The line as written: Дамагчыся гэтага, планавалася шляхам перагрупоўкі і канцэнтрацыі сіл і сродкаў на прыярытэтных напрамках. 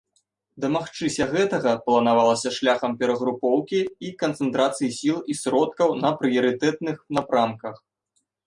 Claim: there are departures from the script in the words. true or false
false